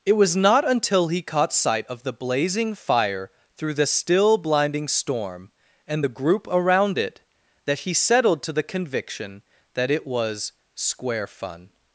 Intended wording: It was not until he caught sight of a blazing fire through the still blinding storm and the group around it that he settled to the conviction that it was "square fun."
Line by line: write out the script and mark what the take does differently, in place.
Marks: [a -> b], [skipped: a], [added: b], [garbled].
It was not until he caught sight of [a -> the] blazing fire through the still blinding storm and the group around it that he settled to the conviction that it was "square fun."